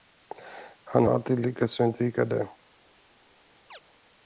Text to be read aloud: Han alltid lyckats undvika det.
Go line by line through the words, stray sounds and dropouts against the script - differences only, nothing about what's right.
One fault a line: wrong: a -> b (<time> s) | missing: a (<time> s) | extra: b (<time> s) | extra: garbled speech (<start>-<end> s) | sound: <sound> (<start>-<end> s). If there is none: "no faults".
sound: chirp (3.7-3.8 s)